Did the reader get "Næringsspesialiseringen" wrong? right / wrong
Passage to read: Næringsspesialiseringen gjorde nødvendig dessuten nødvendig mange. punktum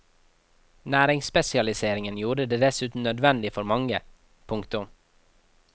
right